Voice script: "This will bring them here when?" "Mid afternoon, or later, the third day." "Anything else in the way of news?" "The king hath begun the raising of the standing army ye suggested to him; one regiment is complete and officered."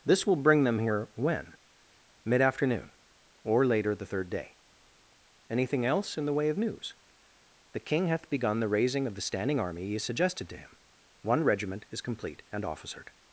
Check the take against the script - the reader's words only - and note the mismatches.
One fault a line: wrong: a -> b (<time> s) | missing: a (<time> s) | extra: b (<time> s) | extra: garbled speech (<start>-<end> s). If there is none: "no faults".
no faults